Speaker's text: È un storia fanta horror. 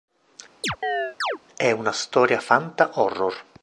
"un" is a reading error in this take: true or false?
true